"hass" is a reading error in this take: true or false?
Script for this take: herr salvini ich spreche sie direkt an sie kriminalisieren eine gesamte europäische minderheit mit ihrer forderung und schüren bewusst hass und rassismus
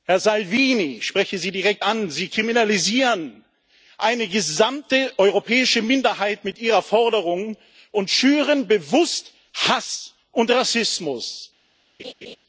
false